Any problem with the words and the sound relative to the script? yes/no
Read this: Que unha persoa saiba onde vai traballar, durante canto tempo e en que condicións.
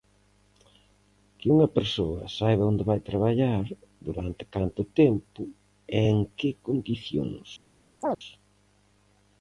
yes